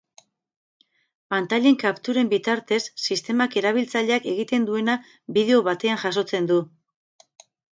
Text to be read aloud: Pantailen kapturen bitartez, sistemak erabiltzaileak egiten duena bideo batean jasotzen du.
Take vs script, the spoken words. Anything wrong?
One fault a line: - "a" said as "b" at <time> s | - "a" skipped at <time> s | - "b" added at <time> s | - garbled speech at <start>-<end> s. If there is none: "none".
none